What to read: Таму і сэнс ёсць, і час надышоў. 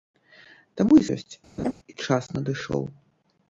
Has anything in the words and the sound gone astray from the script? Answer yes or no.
yes